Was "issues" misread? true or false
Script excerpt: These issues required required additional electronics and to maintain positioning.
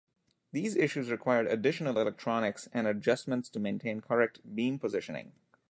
false